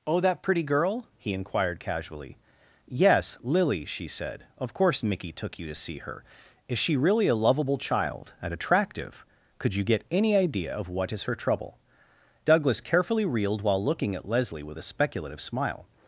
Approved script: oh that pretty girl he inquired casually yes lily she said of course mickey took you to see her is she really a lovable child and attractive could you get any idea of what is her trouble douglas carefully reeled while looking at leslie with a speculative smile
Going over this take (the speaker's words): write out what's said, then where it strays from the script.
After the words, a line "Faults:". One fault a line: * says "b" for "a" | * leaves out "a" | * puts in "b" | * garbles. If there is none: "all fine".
oh that pretty girl he inquired casually yes lily she said of course mickey took you to see her is she really a lovable child and attractive could you get any idea of what is her trouble douglas carefully reeled while looking at leslie with a speculative smile
Faults:
all fine